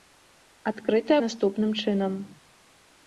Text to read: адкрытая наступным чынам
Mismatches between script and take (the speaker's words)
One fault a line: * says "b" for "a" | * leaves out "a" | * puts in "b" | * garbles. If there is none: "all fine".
all fine